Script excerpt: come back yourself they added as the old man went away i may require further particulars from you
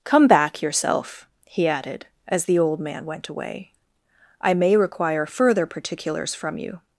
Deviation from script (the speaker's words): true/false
true